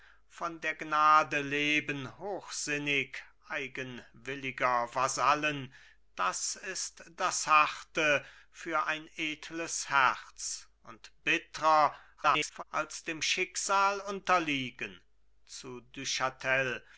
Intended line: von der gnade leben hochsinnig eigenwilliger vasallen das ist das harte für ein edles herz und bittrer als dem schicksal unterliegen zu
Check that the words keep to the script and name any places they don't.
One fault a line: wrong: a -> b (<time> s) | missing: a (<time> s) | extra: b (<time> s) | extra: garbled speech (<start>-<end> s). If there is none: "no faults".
extra: garbled speech (12.2-12.6 s)